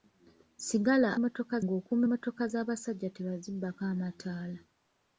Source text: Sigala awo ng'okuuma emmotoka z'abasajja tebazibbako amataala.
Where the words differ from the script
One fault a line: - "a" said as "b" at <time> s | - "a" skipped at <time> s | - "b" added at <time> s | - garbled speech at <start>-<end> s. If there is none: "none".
- "awo" said as "emmotoka" at 1.2 s